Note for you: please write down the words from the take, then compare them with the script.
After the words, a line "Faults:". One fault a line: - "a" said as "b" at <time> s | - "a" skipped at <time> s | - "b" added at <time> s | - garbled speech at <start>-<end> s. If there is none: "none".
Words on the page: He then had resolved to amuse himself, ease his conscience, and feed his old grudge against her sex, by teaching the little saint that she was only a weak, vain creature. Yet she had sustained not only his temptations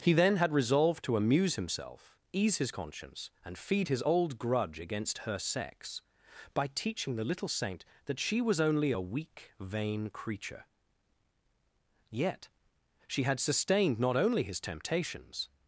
He then had resolved to amuse himself, ease his conscience, and feed his old grudge against her sex, by teaching the little saint that she was only a weak, vain creature. Yet she had sustained not only his temptations
Faults:
none